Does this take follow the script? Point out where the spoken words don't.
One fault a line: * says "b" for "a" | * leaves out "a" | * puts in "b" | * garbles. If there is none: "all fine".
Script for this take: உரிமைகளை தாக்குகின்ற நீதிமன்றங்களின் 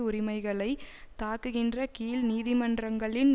* puts in "கீழ்"